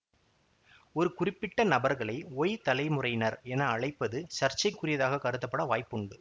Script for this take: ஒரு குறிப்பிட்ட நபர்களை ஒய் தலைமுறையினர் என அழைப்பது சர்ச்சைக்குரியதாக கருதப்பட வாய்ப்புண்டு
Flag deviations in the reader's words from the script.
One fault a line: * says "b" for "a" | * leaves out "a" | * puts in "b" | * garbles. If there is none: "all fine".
all fine